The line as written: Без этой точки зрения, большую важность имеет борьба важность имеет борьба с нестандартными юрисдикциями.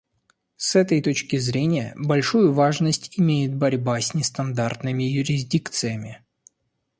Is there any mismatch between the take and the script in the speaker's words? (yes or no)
yes